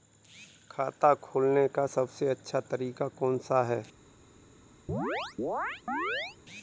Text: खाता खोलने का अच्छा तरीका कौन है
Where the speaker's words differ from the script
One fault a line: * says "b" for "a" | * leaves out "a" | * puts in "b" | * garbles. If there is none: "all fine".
* puts in "सबसे"
* puts in "सा"